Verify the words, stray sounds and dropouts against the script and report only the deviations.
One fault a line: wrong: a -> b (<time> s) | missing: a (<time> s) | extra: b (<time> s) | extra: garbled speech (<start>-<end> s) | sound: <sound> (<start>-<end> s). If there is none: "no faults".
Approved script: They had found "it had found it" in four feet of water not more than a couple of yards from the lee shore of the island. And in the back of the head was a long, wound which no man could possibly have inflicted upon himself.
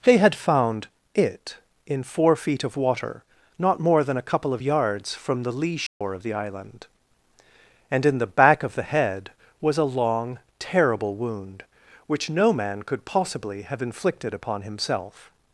missing: had found it (1.6 s)
sound: dropout (5.9-6.0 s)
extra: terrible (10.6 s)